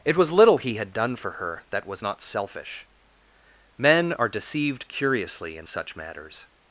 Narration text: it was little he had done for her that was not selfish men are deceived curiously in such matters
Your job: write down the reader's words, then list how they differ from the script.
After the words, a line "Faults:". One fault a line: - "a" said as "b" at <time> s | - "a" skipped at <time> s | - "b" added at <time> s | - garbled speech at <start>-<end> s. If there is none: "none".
it was little he had done for her that was not selfish men are deceived curiously in such matters
Faults:
none